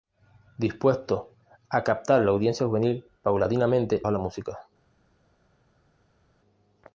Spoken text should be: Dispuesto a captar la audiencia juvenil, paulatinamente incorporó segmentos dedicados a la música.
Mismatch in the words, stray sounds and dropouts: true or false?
true